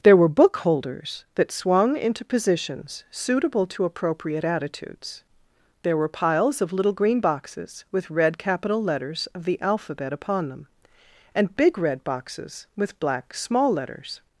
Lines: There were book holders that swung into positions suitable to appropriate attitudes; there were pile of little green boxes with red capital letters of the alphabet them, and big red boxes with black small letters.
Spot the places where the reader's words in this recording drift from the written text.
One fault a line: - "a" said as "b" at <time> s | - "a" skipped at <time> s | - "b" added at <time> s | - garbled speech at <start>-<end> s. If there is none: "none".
- "pile" said as "piles" at 6.1 s
- "upon" added at 10.1 s